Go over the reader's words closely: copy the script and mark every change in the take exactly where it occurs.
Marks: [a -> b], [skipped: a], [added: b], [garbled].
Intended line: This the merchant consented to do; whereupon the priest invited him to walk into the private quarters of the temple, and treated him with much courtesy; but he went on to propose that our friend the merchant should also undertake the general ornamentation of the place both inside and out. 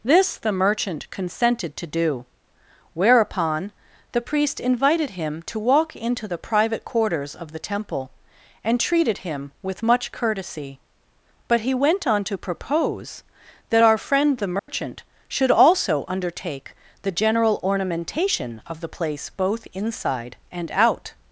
This the merchant consented to do; whereupon the priest invited him to walk into the private quarters of the temple, and treated him with much courtesy; but he went on to propose that our friend the merchant should also undertake the general ornamentation of the place both inside and out.